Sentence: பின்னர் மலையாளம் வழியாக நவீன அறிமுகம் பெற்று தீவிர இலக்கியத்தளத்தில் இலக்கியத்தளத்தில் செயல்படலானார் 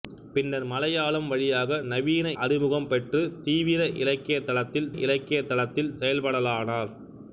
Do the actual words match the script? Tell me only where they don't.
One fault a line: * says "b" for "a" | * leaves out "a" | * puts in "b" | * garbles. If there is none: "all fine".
all fine